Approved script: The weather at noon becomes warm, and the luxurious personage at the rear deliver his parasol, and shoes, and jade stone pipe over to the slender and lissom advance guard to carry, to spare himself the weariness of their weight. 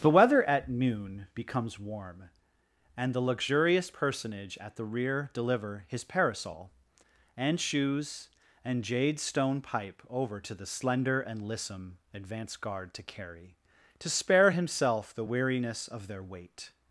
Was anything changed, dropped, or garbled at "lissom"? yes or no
no